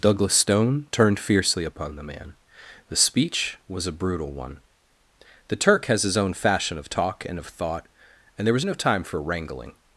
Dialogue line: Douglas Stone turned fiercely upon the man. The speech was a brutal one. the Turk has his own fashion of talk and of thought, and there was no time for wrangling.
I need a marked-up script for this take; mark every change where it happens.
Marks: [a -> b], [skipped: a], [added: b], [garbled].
Douglas Stone turned fiercely upon the man. The speech was a brutal one. the Turk has his own fashion of talk and of thought, and there was no time for wrangling.